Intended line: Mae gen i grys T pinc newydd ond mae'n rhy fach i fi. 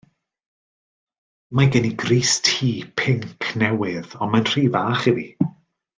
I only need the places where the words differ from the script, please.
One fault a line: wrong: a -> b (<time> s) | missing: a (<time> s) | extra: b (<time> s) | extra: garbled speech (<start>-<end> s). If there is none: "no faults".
no faults